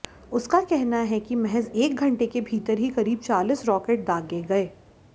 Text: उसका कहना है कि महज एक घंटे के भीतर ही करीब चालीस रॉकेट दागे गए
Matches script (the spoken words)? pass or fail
pass